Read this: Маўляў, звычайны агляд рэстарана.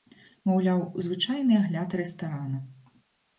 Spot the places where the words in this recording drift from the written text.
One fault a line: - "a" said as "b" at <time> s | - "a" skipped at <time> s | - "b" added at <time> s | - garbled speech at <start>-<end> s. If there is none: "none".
none